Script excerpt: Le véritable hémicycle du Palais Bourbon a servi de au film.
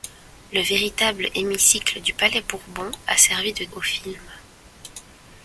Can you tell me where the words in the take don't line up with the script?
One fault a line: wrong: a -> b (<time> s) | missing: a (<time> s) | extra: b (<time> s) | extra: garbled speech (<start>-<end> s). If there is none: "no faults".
no faults